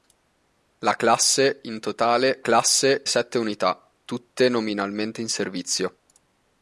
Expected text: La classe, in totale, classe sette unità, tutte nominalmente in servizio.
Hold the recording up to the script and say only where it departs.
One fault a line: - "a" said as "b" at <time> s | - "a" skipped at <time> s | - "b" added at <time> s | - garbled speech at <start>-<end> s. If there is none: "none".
none